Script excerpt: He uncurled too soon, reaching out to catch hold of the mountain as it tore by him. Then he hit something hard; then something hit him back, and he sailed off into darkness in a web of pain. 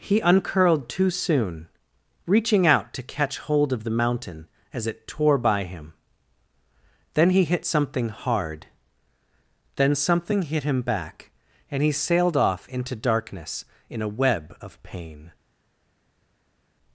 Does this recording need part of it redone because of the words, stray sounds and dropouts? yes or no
no